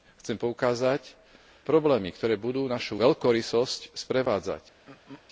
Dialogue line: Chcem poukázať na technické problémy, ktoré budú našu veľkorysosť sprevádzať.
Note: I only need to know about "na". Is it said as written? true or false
false